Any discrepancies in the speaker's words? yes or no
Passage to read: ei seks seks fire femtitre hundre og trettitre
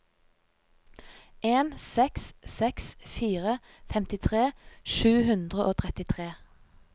yes